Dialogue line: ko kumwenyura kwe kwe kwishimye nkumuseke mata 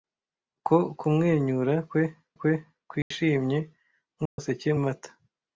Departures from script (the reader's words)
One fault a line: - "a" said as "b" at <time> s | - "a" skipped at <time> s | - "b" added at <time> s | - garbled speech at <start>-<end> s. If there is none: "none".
none